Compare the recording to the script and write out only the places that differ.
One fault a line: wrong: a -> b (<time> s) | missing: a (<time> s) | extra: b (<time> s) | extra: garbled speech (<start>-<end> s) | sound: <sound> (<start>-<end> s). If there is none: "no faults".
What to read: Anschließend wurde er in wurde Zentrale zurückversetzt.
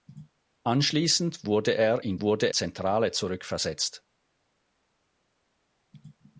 no faults